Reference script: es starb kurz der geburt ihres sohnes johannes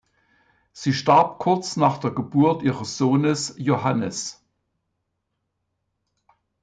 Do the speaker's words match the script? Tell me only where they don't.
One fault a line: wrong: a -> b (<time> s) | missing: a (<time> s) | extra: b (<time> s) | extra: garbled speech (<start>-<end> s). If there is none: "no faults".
wrong: es -> sie (0.7 s)
extra: nach (1.8 s)